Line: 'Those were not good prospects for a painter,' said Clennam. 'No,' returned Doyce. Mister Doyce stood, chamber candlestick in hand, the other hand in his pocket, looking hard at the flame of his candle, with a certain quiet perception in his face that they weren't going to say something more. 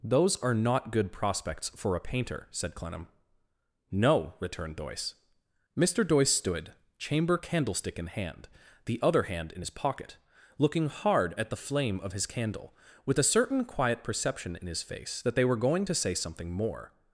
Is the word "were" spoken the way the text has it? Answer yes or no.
no